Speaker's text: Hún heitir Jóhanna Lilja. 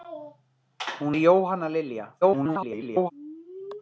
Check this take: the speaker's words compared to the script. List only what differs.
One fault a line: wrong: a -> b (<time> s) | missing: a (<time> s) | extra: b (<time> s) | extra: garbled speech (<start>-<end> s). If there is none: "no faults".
missing: heitir (1.1 s)
extra: garbled speech (2.2-3.1 s)